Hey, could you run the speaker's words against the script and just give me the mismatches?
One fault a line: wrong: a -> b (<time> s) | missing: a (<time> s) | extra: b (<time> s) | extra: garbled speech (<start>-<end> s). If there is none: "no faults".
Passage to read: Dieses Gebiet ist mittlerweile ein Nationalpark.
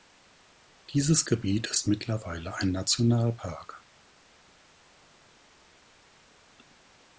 no faults